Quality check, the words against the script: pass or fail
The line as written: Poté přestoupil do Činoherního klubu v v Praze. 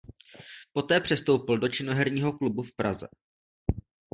fail